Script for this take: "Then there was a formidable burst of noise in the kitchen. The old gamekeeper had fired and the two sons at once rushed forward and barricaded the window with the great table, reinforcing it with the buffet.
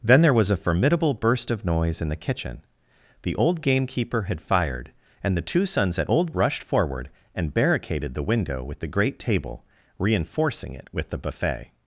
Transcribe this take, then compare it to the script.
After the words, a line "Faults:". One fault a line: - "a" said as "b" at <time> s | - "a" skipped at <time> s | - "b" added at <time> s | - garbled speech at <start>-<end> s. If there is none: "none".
"Then there was a formidable burst of noise in the kitchen. The old gamekeeper had fired and the two sons at old rushed forward and barricaded the window with the great table, reinforcing it with the buffet.
Faults:
- "once" said as "old" at 6.1 s